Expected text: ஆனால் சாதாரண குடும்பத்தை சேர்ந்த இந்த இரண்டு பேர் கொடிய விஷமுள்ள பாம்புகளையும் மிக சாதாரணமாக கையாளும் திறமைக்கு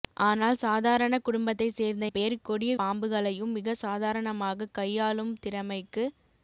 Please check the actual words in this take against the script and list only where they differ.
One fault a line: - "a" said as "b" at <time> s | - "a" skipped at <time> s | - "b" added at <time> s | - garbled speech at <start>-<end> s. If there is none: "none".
- "இந்த இரண்டு" skipped at 2.0 s
- "விஷமுள்ள" skipped at 2.7 s